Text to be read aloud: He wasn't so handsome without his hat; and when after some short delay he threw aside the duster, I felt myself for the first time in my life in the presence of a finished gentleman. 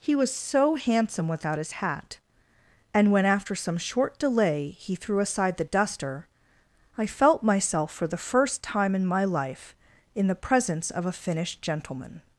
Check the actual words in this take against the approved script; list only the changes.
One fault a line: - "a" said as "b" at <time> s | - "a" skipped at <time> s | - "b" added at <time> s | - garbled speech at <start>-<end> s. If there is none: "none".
- "wasn't" said as "was" at 0.1 s